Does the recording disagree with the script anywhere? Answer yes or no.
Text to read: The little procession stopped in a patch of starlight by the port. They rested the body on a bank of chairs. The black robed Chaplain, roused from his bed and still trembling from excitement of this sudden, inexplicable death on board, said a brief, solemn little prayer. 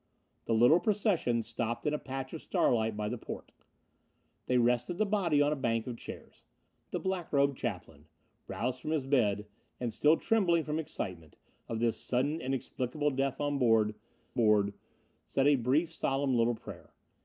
yes